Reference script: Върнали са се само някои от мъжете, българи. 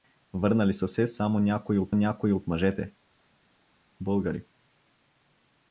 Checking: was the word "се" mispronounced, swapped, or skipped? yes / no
no